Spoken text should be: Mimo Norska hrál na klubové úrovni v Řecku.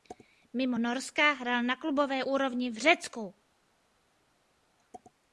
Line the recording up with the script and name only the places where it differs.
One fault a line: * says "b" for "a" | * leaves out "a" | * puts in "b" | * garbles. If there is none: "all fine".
all fine